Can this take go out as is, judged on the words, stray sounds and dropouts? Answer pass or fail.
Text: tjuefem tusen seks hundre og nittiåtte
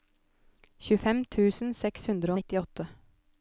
pass